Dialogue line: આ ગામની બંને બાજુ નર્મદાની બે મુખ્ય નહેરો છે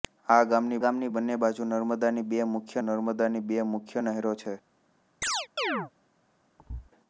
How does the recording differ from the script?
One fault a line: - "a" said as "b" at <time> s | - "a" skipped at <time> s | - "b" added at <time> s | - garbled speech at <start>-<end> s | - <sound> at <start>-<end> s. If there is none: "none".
- "ગામની" added at 0.8 s
- "નર્મદાની બે મુખ્ય" added at 2.8 s
- chirp at 5.2-5.9 s
- thud at 6.6-6.9 s